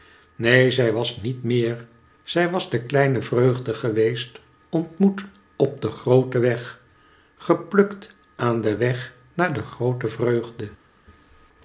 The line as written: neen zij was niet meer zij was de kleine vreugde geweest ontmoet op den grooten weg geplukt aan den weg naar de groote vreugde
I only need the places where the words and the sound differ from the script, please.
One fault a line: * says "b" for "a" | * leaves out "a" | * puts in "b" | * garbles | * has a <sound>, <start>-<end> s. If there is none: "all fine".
all fine